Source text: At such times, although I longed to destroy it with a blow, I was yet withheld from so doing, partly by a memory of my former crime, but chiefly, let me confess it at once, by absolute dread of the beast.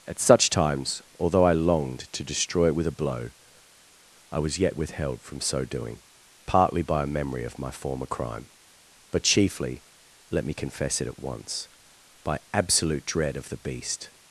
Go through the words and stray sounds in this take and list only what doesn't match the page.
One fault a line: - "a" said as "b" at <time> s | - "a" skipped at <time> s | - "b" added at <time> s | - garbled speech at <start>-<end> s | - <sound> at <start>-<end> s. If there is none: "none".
none